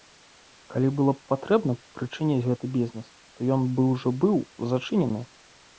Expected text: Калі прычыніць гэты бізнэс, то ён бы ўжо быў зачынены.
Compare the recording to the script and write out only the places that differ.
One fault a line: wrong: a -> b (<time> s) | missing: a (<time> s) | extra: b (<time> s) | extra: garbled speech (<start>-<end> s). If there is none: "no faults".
extra: было б патрэбна (1.0 s)